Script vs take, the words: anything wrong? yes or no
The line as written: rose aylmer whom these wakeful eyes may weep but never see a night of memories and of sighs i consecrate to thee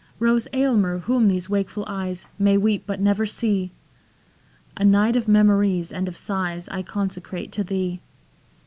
no